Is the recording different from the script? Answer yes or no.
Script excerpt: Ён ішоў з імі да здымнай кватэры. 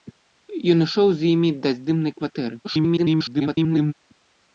yes